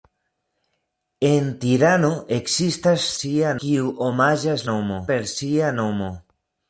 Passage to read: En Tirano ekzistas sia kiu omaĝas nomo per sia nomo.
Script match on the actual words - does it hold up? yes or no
yes